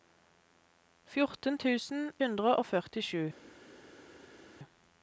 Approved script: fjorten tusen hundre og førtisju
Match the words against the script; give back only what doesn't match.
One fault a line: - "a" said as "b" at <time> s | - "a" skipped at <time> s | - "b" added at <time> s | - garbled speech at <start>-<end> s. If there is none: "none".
none